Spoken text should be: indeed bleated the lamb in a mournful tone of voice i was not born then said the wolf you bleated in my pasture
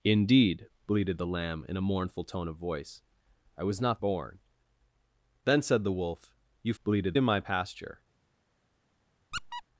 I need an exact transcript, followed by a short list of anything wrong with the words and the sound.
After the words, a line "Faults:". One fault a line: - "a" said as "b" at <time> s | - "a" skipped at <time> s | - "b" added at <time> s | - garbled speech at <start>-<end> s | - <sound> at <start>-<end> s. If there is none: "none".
indeed bleated the lamb in a mournful tone of voice i was not born then said the wolf you bleated in my pasture
Faults:
- squeak at 9.3-9.6 s